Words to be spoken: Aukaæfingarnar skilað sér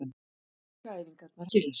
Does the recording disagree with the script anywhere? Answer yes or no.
no